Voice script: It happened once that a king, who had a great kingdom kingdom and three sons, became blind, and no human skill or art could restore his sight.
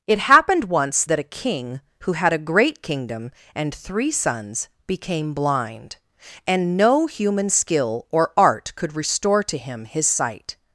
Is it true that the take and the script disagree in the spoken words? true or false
true